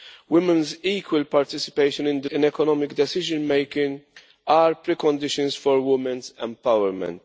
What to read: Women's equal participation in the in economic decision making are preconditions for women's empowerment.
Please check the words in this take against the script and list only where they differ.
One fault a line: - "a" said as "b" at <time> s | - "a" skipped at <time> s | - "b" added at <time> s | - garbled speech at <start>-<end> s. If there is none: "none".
none